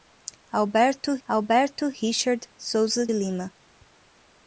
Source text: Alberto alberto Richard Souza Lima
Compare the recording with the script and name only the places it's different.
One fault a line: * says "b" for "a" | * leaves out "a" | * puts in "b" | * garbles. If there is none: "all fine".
all fine